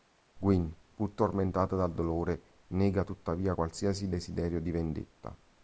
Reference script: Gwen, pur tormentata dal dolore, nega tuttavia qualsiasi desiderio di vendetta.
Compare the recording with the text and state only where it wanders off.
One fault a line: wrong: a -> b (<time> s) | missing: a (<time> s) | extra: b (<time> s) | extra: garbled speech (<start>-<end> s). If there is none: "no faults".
no faults